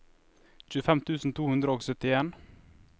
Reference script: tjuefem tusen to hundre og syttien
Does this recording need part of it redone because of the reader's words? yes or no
no